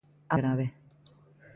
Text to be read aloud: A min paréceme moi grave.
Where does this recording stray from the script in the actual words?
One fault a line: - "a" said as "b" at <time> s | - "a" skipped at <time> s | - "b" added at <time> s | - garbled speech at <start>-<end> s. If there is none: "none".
- "min paréceme moi" skipped at 0.3 s